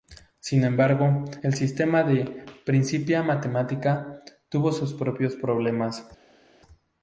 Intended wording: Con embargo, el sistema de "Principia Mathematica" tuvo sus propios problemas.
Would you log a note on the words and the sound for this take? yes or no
yes